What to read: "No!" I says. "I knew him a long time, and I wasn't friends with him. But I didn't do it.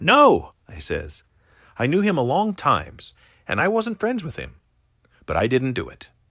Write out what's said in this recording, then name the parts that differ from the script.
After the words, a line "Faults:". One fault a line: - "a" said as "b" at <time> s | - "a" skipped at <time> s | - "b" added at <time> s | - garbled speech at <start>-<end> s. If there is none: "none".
"No!" I says. "I knew him a long times, and I wasn't friends with him. But I didn't do it.
Faults:
- "time" said as "times" at 2.5 s